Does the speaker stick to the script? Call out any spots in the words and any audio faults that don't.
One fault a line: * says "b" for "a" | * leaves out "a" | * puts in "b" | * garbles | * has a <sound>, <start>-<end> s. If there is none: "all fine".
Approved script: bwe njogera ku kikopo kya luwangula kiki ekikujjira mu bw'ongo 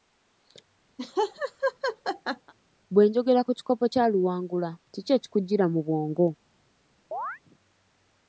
* has a laugh, 1.0-2.5 s
* has a chirp, 7.1-7.4 s